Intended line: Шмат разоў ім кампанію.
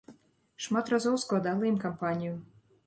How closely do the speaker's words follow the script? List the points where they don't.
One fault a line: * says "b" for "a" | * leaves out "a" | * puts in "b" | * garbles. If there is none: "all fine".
* puts in "складала"